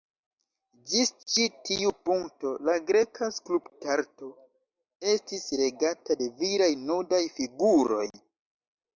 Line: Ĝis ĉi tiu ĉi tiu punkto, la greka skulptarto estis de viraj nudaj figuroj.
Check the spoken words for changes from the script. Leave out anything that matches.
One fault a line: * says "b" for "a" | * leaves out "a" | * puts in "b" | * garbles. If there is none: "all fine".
* leaves out "ĉi tiu"
* puts in "regata"